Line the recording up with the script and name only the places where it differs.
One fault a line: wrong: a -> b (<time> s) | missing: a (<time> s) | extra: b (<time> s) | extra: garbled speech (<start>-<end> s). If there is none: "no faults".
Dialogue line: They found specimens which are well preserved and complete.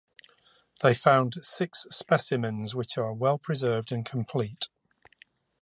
extra: six (1.4 s)